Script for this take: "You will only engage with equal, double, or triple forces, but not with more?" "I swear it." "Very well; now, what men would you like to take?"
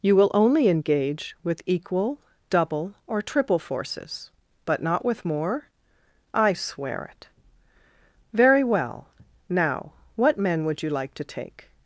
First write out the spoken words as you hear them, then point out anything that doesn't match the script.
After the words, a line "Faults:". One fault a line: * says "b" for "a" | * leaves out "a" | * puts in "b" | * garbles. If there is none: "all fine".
"You will only engage with equal, double, or triple forces, but not with more?" "I swear it." "Very well; now, what men would you like to take?"
Faults:
all fine